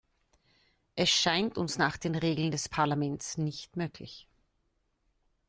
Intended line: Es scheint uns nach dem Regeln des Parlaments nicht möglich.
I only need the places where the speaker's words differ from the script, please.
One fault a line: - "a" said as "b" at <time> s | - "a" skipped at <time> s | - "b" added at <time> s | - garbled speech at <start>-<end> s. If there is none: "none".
- "dem" said as "den" at 2.0 s